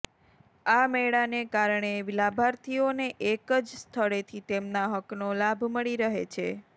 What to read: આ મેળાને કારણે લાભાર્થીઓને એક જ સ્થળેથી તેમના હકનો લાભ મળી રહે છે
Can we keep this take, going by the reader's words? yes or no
yes